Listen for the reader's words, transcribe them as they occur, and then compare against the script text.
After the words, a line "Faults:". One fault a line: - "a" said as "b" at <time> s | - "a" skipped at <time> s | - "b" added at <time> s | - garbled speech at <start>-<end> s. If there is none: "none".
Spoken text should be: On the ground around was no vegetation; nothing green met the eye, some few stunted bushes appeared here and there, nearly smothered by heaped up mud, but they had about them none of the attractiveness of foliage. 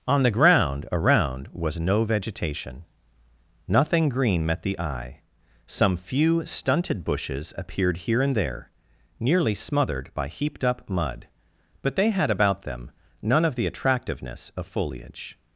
On the ground around was no vegetation; nothing green met the eye, some few stunted bushes appeared here and there, nearly smothered by heaped up mud, but they had about them none of the attractiveness of foliage.
Faults:
none